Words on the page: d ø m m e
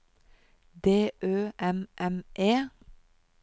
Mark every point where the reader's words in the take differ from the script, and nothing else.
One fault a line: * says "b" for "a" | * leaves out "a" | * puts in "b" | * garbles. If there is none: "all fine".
all fine